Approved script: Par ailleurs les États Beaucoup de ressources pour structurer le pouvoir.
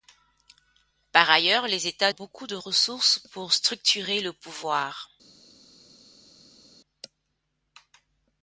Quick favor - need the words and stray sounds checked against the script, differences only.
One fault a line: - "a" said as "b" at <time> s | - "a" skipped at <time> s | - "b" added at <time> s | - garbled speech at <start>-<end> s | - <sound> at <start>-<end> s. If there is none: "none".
none